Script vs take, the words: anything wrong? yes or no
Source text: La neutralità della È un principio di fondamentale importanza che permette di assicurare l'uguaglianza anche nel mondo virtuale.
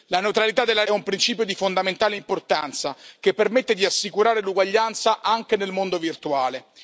no